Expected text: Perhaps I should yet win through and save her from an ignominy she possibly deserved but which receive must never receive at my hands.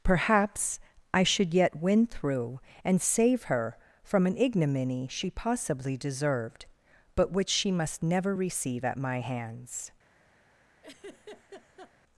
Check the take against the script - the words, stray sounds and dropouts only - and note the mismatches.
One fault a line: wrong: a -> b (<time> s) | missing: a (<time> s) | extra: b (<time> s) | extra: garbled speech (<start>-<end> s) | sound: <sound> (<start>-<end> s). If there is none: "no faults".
wrong: receive -> she (7.5 s)
sound: laugh (10.8-11.9 s)